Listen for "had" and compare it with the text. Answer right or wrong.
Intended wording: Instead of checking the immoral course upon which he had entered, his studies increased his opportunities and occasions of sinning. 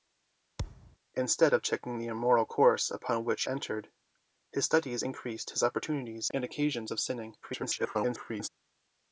wrong